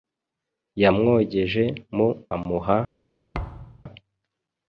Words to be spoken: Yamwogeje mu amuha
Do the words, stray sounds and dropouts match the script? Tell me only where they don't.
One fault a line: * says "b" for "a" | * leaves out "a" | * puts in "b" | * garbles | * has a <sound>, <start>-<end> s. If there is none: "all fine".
* has a thud, 3.3-3.8 s